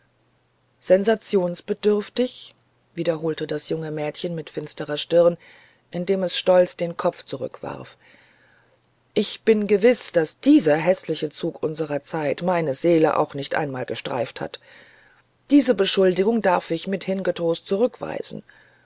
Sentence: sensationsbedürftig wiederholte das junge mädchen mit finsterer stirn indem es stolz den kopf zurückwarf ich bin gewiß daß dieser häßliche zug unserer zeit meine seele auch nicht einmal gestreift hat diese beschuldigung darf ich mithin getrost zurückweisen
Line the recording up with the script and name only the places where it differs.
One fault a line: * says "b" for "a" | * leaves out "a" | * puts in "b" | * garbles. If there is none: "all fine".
all fine